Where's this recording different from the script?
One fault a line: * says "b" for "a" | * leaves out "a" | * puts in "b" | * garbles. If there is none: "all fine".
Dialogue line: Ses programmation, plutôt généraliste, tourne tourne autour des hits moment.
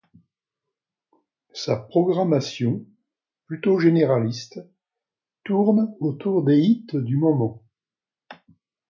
* says "Sa" for "Ses"
* leaves out "tourne"
* puts in "du"